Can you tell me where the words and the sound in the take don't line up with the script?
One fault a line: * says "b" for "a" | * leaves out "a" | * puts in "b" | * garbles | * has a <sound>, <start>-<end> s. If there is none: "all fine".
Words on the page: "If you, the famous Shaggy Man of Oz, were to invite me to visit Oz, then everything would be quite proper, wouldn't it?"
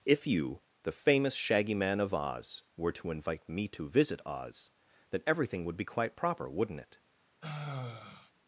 * has a sigh, 7.4-8.3 s